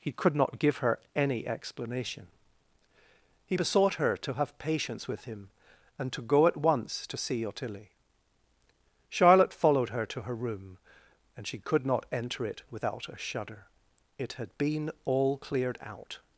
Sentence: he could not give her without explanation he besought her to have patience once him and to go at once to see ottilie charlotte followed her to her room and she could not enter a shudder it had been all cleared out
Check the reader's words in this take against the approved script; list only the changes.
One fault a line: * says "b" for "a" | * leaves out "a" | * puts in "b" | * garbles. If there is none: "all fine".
* says "any" for "without"
* says "with" for "once"
* puts in "it without"